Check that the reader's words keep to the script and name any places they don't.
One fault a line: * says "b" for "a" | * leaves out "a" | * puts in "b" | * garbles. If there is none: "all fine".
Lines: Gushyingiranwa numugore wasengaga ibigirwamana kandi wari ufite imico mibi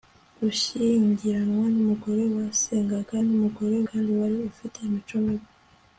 * says "numugore" for "ibigirwamana"